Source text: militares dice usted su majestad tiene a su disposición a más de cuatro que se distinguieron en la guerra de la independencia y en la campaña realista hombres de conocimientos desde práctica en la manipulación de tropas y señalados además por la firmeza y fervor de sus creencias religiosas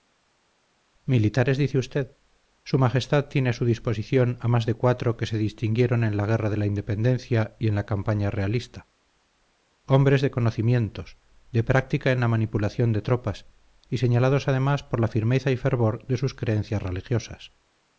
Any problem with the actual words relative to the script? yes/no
yes